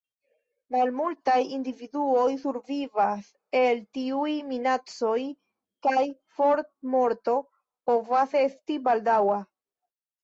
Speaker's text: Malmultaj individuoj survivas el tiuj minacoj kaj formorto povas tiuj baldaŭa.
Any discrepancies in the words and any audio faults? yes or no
yes